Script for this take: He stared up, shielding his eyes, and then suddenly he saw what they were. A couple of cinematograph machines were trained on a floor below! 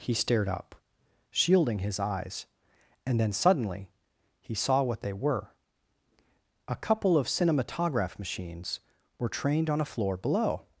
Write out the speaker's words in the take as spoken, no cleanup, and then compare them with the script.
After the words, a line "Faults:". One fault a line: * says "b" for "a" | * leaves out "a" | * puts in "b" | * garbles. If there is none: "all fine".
He stared up, shielding his eyes, and then suddenly he saw what they were. A couple of cinematograph machines were trained on a floor below!
Faults:
all fine